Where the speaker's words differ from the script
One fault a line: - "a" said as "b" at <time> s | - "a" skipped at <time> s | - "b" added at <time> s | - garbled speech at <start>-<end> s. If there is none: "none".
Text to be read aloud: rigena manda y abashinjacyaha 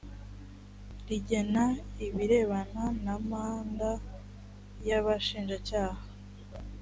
- "ibirebana na" added at 2.0 s